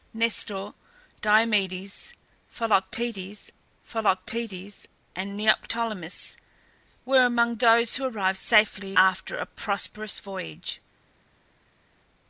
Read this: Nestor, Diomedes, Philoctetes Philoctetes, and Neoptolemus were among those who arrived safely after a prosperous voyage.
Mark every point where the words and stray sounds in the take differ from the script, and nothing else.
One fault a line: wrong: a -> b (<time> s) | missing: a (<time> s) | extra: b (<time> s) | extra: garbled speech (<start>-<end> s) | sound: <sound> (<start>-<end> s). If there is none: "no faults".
no faults